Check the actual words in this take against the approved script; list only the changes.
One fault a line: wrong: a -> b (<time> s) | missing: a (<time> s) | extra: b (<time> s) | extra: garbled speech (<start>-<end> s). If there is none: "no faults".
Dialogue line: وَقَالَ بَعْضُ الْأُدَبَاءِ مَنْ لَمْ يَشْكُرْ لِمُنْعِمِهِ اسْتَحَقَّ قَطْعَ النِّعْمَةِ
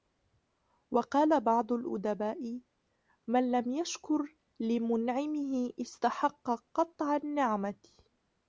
no faults